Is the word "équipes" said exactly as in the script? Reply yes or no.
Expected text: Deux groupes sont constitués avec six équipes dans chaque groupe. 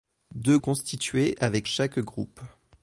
no